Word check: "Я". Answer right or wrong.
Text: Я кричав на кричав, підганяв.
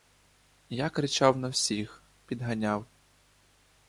right